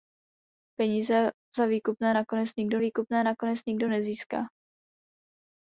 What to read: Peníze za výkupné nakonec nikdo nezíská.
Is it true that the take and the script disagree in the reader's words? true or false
true